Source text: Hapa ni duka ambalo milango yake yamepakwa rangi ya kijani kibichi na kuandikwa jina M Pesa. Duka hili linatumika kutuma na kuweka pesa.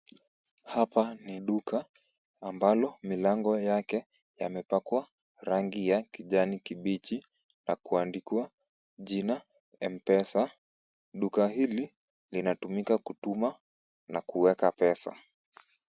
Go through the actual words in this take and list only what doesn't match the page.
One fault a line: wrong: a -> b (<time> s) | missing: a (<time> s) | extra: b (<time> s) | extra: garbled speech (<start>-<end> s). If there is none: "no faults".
no faults